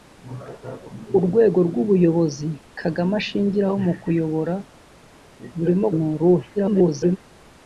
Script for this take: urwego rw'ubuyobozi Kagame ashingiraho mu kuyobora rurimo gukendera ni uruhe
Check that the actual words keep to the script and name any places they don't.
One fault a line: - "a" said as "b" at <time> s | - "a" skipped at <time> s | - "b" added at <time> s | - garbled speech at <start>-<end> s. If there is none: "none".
- "gukendera" skipped at 5.9 s
- garbled speech at 6.6-7.2 s